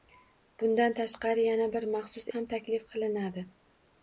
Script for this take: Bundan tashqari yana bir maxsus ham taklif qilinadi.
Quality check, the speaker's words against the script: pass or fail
pass